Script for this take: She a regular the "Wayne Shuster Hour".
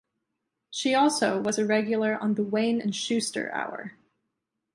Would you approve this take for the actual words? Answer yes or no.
no